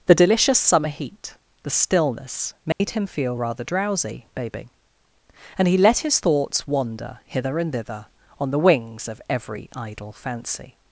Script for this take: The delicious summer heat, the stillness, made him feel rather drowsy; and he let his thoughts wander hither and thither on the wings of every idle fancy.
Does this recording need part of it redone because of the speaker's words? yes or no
yes